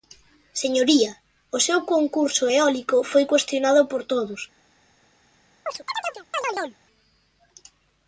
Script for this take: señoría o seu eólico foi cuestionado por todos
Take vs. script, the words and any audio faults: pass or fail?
fail